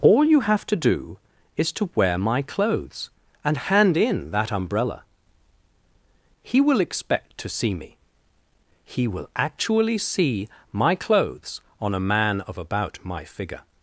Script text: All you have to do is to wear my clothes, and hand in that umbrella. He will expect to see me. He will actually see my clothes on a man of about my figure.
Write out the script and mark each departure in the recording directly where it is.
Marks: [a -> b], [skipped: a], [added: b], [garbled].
All you have to do is to wear my clothes, and hand in that umbrella. He will expect to see me. He will actually see my clothes on a man of about my figure.